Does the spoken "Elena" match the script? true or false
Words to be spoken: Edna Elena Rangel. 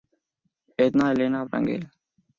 true